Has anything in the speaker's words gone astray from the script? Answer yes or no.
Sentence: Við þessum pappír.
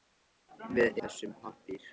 no